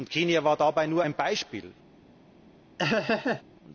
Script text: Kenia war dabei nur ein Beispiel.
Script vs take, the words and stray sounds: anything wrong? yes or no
yes